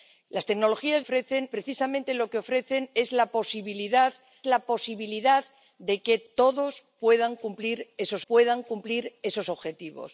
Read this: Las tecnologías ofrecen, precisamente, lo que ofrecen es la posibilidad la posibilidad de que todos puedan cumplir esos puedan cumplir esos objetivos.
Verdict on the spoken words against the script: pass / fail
pass